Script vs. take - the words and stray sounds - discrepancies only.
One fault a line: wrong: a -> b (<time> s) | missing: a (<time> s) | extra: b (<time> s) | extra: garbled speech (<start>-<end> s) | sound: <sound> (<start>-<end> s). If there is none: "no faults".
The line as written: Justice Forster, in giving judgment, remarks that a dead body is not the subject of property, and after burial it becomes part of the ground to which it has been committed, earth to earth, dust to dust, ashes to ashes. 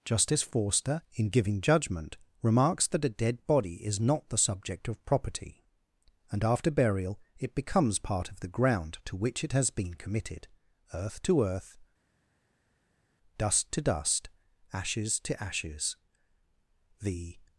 extra: The (17.0 s)